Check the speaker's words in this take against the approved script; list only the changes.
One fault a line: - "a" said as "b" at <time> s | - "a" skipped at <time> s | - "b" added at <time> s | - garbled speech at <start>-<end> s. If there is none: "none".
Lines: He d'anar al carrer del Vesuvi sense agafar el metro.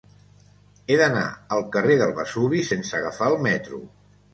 none